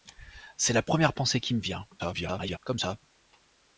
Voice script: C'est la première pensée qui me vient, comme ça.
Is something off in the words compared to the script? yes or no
yes